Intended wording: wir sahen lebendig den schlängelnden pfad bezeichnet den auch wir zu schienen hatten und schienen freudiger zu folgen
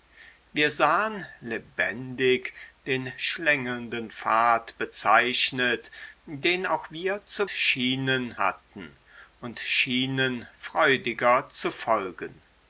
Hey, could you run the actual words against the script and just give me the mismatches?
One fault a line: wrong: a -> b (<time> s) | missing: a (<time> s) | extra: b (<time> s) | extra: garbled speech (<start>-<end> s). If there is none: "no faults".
no faults